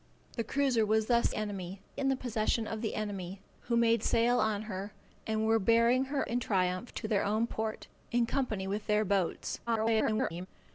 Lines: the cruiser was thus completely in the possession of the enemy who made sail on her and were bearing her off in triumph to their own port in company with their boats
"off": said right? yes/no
no